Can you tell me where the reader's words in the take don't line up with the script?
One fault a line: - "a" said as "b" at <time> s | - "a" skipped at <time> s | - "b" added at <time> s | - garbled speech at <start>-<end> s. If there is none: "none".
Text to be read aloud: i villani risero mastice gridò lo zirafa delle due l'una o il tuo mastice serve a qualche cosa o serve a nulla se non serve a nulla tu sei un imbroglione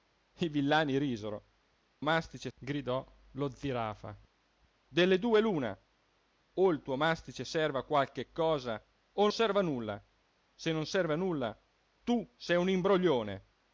none